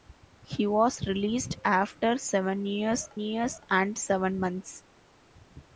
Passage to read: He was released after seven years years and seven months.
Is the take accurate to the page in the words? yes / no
yes